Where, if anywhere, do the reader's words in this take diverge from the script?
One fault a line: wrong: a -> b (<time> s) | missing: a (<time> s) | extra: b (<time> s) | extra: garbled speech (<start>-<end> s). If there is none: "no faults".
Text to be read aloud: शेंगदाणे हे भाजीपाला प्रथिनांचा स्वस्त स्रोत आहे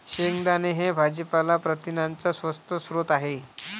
no faults